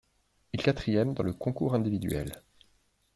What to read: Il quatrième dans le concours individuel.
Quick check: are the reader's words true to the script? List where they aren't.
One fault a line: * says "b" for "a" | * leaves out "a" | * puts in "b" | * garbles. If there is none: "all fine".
all fine